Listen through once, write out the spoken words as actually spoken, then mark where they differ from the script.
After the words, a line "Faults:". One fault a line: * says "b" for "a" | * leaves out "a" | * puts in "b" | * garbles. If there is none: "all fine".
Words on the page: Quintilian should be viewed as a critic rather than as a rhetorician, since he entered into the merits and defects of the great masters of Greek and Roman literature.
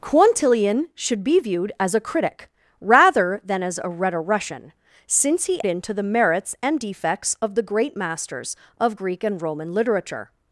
Quintilian should be viewed as a critic rather than as a rhetorician, since he into the merits and defects of the great masters of Greek and Roman literature.
Faults:
* leaves out "entered"